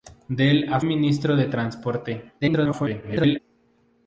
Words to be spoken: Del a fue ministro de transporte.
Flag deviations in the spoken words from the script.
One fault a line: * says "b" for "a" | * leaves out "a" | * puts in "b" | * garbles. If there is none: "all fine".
* leaves out "fue"
* garbles